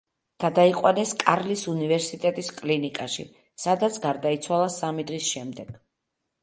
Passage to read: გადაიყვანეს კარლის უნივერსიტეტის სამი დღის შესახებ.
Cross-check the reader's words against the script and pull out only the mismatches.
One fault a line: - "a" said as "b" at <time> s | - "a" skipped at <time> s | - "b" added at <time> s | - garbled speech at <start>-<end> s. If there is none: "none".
- "კლინიკაში სადაც გარდაიცვალა" added at 2.6 s
- "შესახებ" said as "შემდეგ" at 5.4 s